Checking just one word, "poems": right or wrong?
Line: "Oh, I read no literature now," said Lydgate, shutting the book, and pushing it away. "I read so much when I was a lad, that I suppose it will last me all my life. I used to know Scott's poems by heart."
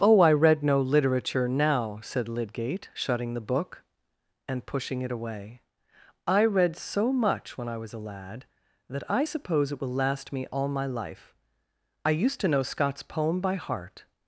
wrong